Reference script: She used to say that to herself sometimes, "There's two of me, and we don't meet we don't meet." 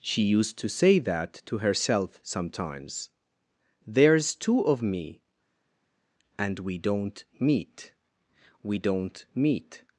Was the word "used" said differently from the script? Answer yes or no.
no